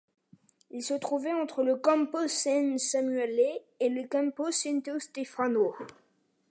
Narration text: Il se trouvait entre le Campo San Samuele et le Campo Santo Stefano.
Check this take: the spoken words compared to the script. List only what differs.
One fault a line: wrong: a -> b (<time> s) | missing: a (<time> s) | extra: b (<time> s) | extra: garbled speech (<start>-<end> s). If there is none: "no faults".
no faults